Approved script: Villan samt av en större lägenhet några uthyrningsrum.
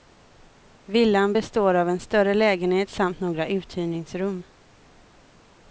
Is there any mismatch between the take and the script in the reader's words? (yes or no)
yes